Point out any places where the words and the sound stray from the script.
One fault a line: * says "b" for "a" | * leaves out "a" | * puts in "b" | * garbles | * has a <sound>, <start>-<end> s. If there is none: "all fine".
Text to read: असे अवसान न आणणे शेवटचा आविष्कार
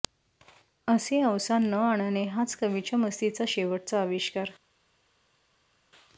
* puts in "हाच कवीच्या मस्तीचा"